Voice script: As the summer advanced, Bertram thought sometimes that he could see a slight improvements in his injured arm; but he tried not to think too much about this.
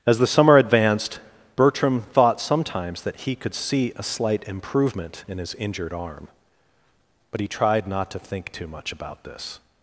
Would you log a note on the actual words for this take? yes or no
yes